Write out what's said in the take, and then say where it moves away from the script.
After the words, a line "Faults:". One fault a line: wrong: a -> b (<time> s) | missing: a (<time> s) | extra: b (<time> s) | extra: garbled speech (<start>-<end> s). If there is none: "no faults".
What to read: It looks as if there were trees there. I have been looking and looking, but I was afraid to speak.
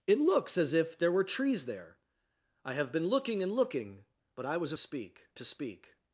It looks as if there were trees there. I have been looking and looking, but I was speak to speak.
Faults:
wrong: afraid -> speak (4.8 s)